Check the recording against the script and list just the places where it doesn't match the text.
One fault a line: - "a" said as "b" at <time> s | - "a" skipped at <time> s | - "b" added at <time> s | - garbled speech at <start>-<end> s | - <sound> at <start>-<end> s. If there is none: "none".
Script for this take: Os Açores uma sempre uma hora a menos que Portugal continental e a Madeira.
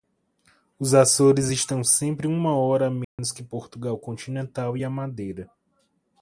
- "uma" said as "estão" at 1.5 s
- dropout at 3.0-3.2 s